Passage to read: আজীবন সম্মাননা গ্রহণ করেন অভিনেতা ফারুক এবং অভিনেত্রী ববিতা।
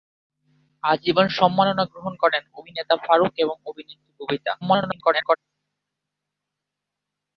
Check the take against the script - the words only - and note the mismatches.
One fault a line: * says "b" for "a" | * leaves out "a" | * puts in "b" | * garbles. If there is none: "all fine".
* garbles